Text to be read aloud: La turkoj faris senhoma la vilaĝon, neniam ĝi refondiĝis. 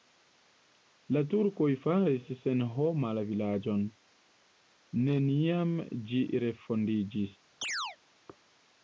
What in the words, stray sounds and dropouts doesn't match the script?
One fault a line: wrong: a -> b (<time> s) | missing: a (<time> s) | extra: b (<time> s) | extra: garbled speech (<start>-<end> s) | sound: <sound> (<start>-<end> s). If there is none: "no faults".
sound: chirp (7.6-8.0 s)